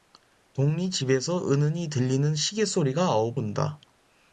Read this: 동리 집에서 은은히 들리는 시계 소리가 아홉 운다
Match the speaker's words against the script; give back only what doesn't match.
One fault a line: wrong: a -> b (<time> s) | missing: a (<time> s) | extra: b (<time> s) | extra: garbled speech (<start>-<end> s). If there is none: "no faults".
no faults